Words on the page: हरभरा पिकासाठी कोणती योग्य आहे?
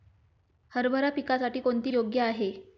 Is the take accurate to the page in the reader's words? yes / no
yes